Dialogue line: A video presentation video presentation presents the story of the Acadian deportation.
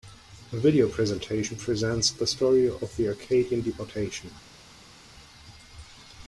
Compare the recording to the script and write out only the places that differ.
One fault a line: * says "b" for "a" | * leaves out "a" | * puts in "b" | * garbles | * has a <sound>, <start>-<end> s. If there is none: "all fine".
* leaves out "video presentation"